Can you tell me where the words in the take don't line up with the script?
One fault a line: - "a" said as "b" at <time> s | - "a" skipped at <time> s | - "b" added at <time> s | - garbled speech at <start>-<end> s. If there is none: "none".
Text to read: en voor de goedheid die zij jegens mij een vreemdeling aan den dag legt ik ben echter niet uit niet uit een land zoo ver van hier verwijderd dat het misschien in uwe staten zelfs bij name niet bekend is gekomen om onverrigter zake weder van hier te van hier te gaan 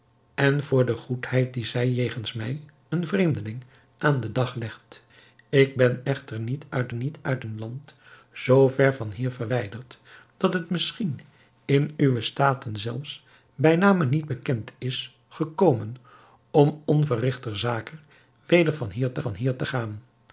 none